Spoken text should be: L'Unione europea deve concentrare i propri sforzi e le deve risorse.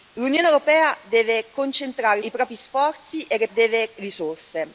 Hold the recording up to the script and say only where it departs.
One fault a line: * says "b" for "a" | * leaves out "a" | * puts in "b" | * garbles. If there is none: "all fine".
all fine